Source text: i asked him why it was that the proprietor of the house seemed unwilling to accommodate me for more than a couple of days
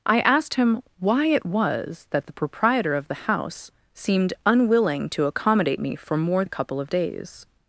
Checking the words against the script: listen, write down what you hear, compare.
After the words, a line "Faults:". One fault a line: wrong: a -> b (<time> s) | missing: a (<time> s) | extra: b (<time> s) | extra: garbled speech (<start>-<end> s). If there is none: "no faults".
i asked him why it was that the proprietor of the house seemed unwilling to accommodate me for more a couple of days
Faults:
missing: than (6.5 s)